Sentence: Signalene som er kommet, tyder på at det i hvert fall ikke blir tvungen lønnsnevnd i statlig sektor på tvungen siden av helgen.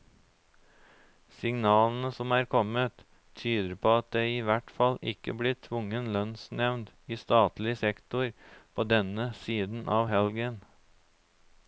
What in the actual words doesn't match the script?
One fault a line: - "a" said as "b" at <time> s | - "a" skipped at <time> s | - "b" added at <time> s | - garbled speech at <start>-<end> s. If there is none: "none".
- "tvungen" said as "denne" at 8.9 s